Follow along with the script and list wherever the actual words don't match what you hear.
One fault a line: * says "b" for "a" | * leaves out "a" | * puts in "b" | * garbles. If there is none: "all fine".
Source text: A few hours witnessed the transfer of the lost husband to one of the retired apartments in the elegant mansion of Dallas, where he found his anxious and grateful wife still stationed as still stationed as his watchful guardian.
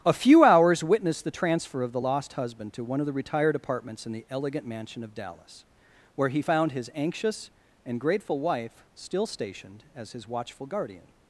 * leaves out "still stationed as"